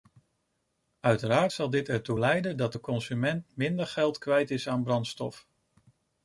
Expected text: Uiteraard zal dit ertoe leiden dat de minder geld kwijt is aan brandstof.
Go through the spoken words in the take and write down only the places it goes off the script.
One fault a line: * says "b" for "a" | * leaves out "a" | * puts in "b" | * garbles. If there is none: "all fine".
* puts in "consument"